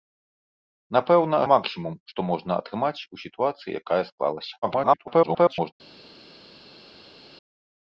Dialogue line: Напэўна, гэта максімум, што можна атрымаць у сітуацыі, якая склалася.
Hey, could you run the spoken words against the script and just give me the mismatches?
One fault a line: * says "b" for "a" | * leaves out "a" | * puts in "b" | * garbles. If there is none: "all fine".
* leaves out "гэта"
* garbles